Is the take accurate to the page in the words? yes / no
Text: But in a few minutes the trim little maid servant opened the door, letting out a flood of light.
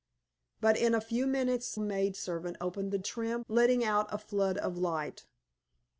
no